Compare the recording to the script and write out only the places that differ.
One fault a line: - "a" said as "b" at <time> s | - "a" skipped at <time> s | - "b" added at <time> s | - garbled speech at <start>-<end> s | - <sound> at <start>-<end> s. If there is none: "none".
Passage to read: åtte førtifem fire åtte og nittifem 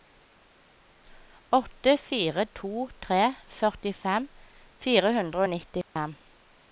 - "fire to tre" added at 2.0 s
- "åtte" said as "hundre" at 5.2 s
- dropout at 5.8-6.0 s